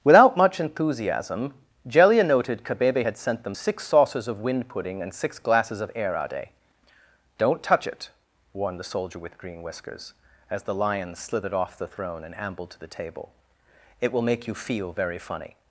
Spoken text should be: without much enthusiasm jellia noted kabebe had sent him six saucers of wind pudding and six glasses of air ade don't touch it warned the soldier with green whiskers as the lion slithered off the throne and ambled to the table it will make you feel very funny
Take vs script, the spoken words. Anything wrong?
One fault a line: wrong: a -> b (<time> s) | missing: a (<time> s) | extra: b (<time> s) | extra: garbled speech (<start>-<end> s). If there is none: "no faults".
wrong: him -> them (3.4 s)